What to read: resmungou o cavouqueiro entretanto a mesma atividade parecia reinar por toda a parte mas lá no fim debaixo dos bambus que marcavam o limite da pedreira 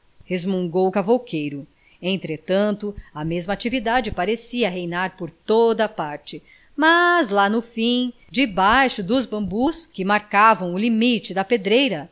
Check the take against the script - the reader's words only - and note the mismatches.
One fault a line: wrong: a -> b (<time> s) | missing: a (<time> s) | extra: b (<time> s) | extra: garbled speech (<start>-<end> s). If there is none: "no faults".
no faults